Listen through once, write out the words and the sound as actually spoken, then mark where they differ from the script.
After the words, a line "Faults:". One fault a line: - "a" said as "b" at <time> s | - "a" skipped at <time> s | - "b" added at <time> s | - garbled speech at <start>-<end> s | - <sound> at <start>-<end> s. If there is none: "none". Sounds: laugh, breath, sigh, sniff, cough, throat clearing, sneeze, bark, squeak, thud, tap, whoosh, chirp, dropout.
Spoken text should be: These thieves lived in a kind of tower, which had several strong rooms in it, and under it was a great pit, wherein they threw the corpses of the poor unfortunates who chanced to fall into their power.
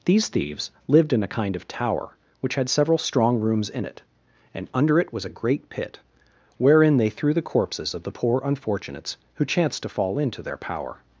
These thieves lived in a kind of tower, which had several strong rooms in it, and under it was a great pit, wherein they threw the corpses of the poor unfortunates who chanced to fall into their power.
Faults:
none